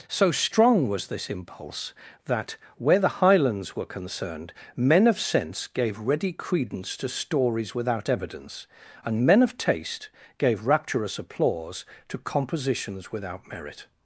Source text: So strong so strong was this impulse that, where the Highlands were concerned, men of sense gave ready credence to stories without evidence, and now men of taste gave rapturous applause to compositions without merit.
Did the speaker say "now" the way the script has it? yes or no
no